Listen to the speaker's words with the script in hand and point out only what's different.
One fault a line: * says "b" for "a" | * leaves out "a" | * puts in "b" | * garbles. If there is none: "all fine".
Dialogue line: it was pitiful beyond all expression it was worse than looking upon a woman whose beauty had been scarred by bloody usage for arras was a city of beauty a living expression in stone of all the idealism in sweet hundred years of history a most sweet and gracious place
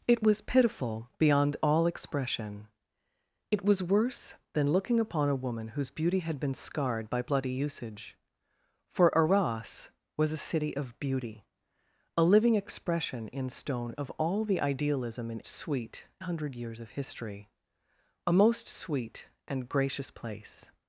all fine